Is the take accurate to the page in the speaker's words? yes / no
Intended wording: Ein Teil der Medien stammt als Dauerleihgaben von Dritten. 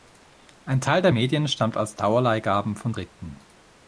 yes